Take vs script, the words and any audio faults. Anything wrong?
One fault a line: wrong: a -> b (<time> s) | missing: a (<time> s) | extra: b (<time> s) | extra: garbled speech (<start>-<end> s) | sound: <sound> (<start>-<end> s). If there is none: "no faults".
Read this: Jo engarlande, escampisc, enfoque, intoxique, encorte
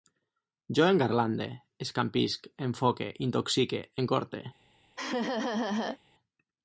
sound: laugh (5.0-6.0 s)